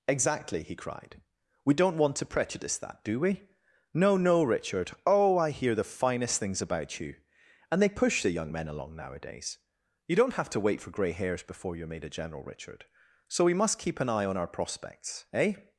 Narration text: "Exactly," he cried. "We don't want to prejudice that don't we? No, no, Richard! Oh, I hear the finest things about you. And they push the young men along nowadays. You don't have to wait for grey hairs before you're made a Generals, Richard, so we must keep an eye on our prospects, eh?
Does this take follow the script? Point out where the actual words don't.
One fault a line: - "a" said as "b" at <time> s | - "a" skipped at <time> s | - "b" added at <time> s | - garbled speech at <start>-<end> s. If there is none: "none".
- "don't" said as "do" at 3.0 s
- "Generals" said as "General" at 12.1 s